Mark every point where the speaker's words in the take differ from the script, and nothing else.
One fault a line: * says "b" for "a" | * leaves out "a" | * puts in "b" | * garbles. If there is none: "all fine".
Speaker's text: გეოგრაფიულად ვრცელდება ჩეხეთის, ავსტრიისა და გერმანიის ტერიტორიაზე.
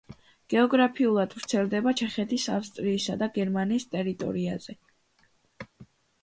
all fine